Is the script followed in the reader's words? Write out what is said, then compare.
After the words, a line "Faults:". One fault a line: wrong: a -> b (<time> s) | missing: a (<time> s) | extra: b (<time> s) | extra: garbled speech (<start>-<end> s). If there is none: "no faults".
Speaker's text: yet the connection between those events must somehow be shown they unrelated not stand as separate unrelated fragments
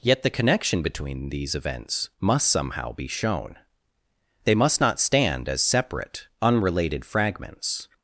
yet the connection between these events must somehow be shown they must not stand as separate unrelated fragments
Faults:
wrong: those -> these (1.3 s)
wrong: unrelated -> must (4.5 s)